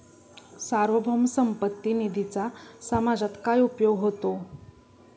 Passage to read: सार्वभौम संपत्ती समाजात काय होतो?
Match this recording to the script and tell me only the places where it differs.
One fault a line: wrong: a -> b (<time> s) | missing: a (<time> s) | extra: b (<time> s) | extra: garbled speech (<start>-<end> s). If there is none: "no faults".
extra: निधीचा (1.9 s)
extra: उपयोग (3.6 s)